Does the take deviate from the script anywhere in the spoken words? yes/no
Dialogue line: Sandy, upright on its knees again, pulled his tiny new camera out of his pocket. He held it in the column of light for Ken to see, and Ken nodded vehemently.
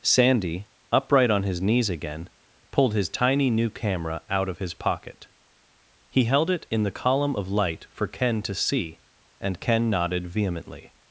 yes